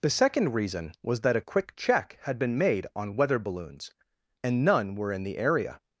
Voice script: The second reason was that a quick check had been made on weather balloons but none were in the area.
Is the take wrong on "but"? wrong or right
wrong